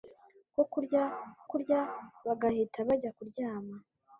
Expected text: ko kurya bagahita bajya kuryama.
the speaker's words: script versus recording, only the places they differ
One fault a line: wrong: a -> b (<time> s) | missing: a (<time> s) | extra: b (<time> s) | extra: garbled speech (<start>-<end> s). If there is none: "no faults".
extra: kurya (1.5 s)